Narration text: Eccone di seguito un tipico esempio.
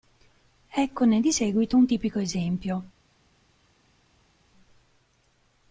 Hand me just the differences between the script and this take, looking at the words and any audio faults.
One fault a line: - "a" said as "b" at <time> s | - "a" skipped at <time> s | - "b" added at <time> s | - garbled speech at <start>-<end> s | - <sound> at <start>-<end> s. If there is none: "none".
none